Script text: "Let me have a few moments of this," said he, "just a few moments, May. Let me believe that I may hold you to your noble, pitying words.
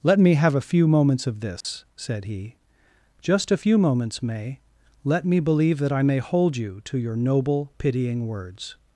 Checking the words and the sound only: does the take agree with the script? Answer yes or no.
no